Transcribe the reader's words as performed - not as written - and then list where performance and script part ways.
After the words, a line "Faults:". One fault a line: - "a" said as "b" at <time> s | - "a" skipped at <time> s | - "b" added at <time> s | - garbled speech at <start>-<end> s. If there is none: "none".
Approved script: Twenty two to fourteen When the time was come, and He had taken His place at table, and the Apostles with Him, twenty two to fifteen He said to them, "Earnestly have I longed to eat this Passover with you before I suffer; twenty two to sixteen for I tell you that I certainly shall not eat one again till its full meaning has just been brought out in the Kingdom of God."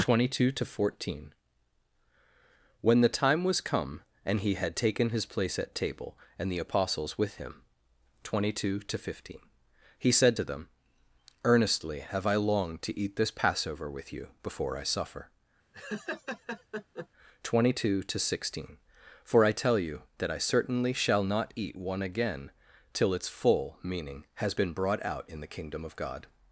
Twenty two to fourteen When the time was come, and He had taken His place at table, and the Apostles with Him, twenty two to fifteen He said to them, "Earnestly have I longed to eat this Passover with you before I suffer; twenty two to sixteen for I tell you that I certainly shall not eat one again till its full meaning has been brought out in the Kingdom of God."
Faults:
- "just" skipped at 24.5 s